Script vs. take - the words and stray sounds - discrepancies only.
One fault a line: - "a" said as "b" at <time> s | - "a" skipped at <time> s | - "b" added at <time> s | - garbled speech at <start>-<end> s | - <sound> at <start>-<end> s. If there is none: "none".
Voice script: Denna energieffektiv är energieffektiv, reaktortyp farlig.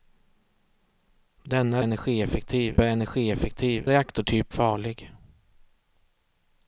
none